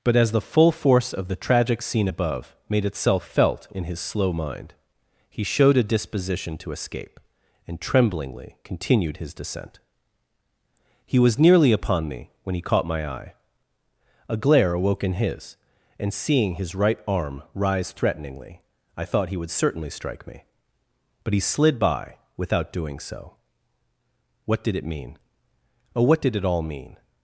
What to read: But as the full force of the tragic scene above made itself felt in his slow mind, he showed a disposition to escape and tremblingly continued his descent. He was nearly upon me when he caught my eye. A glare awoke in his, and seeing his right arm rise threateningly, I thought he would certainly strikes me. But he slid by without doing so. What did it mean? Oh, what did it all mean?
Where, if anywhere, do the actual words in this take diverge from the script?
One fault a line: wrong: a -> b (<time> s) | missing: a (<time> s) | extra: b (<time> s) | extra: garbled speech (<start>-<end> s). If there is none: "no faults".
wrong: strikes -> strike (19.9 s)